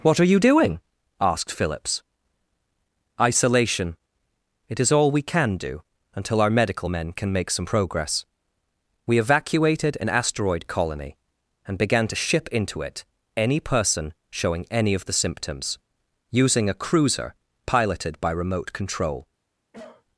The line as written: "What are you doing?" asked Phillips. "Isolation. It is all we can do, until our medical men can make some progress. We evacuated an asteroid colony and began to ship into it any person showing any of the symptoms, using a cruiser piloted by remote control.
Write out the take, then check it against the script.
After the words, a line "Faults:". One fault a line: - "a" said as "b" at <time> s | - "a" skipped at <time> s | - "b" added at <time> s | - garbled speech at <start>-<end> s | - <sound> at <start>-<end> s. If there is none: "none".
"What are you doing?" asked Phillips. "Isolation. It is all we can do, until our medical men can make some progress. We evacuated an asteroid colony and began to ship into it any person showing any of the symptoms, using a cruiser piloted by remote control.
Faults:
- cough at 19.7-20.0 s